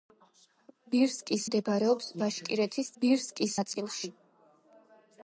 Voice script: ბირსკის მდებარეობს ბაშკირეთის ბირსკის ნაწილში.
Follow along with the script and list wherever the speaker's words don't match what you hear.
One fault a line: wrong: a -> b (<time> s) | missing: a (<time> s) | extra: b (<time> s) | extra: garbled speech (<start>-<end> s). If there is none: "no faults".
no faults